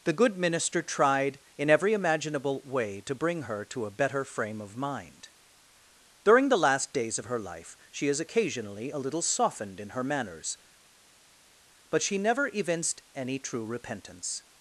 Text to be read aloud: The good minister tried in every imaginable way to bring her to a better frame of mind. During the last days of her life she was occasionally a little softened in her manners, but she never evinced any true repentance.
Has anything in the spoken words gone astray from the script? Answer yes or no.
yes